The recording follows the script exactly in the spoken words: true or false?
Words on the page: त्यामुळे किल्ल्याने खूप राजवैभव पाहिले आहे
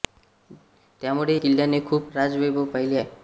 true